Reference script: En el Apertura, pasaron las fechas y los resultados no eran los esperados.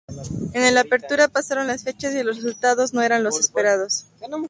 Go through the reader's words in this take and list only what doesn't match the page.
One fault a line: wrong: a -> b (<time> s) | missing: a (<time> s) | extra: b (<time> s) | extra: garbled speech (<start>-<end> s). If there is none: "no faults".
no faults